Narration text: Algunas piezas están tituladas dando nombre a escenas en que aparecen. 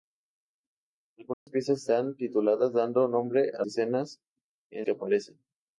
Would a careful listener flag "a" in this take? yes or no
no